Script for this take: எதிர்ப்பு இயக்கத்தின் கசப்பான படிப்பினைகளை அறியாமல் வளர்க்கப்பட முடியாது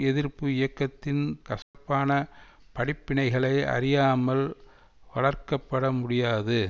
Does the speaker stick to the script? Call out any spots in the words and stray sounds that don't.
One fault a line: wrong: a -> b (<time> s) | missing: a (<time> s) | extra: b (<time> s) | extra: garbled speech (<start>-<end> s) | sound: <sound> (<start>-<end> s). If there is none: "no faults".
sound: dropout (1.6-1.7 s)